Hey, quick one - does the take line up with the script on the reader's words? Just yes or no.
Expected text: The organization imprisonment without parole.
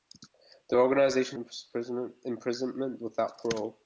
yes